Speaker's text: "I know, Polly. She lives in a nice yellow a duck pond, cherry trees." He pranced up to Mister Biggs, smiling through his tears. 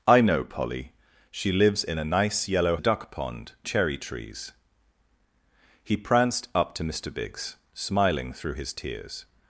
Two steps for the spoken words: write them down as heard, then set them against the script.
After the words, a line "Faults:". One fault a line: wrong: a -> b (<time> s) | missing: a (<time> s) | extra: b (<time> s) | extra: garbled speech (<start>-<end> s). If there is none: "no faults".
"I know, Polly. She lives in a nice yellow a duck pond, cherry trees." He pranced up to Mister Biggs, smiling through his tears.
Faults:
no faults